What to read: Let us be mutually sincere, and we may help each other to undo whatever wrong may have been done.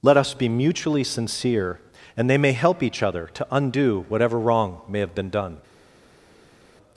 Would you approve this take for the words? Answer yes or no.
no